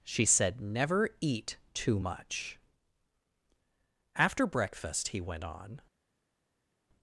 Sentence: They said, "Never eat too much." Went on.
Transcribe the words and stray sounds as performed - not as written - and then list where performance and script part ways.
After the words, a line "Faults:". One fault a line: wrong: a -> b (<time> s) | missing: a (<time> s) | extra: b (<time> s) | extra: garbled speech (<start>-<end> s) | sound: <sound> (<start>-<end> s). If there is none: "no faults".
She said, "Never eat too much." After breakfast he went on.
Faults:
wrong: They -> She (0.0 s)
extra: After breakfast he (4.1 s)